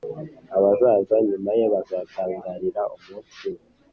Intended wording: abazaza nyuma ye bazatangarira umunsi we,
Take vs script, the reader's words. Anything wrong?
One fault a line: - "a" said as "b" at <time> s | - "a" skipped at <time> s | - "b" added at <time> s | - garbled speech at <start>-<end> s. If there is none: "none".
none